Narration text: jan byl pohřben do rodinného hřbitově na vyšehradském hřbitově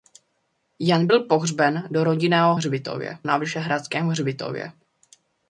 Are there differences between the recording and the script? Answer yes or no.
no